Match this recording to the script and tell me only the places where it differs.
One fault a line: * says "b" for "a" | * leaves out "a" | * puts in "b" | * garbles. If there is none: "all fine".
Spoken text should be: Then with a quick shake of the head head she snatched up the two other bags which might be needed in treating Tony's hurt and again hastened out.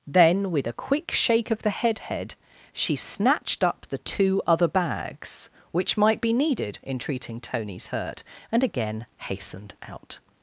all fine